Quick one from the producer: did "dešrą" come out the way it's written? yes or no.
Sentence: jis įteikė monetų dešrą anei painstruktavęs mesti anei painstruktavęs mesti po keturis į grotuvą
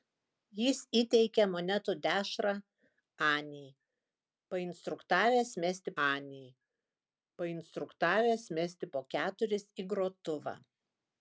yes